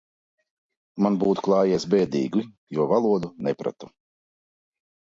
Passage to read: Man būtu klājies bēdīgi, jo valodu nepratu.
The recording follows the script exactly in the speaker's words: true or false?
true